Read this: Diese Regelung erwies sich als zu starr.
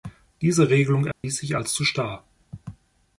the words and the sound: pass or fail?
fail